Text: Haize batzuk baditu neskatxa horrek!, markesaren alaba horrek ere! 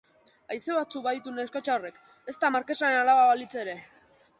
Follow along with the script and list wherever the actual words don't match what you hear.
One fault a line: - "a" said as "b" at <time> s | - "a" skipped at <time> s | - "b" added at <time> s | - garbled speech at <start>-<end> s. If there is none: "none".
- "ezta" added at 2.4 s
- "horrek" said as "balitz" at 3.3 s